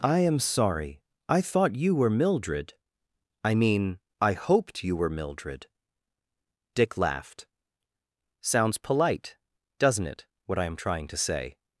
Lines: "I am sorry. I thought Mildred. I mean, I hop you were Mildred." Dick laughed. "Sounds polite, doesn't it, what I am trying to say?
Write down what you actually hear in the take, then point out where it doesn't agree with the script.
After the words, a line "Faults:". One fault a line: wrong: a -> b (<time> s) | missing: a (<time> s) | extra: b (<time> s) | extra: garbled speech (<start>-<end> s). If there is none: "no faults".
"I am sorry. I thought you were Mildred. I mean, I hoped you were Mildred." Dick laughed. "Sounds polite, doesn't it, what I am trying to say?
Faults:
extra: you were (1.8 s)
wrong: hop -> hoped (4.3 s)